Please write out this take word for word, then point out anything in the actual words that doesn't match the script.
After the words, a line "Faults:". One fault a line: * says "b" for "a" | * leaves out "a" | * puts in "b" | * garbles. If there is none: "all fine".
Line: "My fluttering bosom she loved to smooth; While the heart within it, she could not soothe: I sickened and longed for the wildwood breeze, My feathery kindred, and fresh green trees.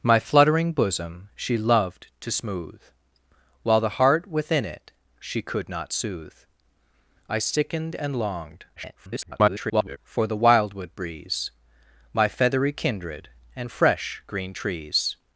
"My fluttering bosom she loved to smooth; While the heart within it, she could not soothe: I sickened and longed [garbled] for the wildwood breeze, My feathery kindred, and fresh green trees.
Faults:
* garbles